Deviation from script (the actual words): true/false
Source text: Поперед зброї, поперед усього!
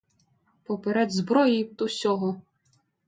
true